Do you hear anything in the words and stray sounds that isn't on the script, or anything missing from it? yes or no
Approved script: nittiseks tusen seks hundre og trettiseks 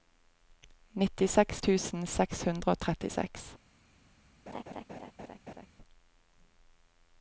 yes